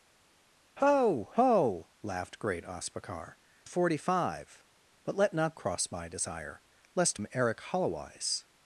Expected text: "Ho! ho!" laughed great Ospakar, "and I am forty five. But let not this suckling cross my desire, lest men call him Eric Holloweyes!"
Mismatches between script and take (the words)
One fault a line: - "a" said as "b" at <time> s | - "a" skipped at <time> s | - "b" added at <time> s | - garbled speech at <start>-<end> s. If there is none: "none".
- "and I am" skipped at 3.4 s
- "this suckling" skipped at 5.6 s
- "men call" skipped at 7.2 s